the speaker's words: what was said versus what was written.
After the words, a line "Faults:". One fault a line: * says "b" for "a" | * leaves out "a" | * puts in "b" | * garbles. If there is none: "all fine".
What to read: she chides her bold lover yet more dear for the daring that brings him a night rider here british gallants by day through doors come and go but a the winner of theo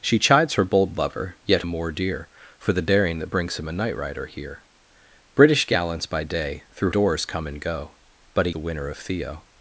she chides her bold lover yet more dear for the daring that brings him a night rider here british gallants by day through doors come and go but a the winner of theo
Faults:
all fine